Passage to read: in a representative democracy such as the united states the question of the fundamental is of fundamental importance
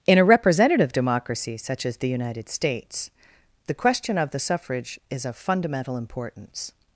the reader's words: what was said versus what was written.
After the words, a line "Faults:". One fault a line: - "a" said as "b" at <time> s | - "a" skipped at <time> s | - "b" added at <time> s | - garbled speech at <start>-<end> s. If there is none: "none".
in a representative democracy such as the united states the question of the suffrage is of fundamental importance
Faults:
- "fundamental" said as "suffrage" at 4.4 s